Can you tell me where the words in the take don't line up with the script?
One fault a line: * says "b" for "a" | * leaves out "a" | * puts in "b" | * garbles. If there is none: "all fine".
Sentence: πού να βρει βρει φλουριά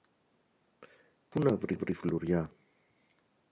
all fine